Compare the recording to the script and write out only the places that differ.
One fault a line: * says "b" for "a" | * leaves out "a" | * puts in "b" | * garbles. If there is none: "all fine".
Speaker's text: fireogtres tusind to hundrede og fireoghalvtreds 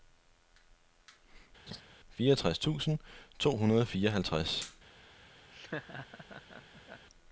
all fine